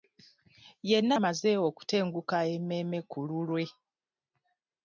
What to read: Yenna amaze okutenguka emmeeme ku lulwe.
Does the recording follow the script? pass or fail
pass